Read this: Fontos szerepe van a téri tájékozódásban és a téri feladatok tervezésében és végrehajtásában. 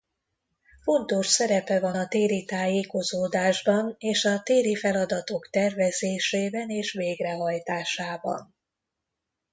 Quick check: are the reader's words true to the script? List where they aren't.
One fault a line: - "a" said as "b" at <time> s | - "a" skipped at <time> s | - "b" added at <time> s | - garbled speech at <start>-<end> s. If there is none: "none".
none